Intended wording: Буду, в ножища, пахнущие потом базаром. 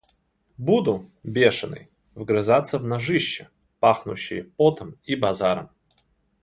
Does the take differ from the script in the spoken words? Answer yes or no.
yes